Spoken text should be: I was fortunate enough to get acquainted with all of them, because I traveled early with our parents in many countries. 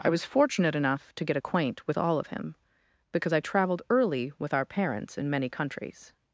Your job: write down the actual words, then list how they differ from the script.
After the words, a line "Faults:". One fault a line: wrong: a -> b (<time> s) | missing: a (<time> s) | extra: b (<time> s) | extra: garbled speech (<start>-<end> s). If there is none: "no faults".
I was fortunate enough to get acquaint with all of him, because I traveled early with our parents in many countries.
Faults:
wrong: acquainted -> acquaint (1.4 s)
wrong: them -> him (2.3 s)